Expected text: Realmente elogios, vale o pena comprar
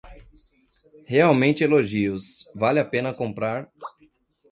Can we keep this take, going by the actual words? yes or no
no